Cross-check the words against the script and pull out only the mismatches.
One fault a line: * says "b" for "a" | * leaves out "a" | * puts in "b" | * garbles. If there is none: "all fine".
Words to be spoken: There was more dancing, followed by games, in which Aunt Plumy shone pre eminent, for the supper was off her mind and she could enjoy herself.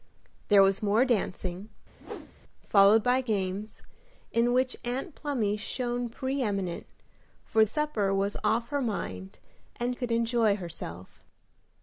* leaves out "the"
* leaves out "she"